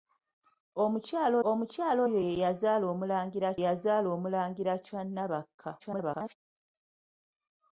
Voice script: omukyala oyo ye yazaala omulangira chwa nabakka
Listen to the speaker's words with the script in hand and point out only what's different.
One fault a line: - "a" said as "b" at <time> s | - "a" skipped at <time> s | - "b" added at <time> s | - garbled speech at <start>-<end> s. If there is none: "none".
- "omukyala" added at 1.5 s
- "yazaala omulangira" added at 3.6 s
- garbled speech at 5.8-6.3 s